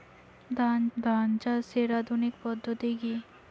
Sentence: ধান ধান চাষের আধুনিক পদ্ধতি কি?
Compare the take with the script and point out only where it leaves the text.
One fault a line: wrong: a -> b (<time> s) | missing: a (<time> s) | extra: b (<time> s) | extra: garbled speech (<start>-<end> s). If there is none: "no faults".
no faults